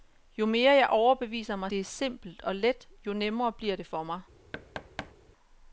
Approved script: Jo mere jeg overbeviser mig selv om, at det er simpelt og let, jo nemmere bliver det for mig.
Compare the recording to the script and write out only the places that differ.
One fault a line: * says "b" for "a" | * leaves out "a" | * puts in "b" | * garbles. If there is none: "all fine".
* leaves out "selv om at"